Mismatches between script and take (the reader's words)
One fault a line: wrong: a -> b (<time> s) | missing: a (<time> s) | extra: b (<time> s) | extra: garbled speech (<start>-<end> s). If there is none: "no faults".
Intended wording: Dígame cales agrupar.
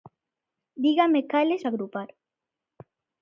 no faults